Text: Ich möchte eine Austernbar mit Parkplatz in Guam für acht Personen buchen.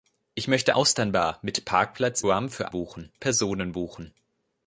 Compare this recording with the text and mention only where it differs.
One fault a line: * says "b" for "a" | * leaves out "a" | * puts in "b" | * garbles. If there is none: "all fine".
* leaves out "eine"
* leaves out "in"
* says "buchen" for "acht"